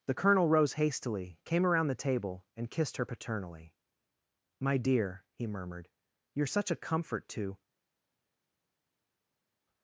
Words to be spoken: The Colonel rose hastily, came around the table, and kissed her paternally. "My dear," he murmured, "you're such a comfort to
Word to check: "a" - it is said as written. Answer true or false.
true